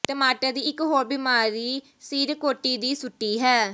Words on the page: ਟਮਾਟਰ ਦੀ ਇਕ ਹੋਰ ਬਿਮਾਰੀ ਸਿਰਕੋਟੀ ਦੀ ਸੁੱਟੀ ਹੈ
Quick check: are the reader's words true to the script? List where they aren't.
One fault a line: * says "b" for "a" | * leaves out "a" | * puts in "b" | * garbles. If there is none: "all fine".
all fine